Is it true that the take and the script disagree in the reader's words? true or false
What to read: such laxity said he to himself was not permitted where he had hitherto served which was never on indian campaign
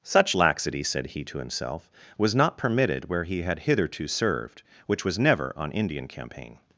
false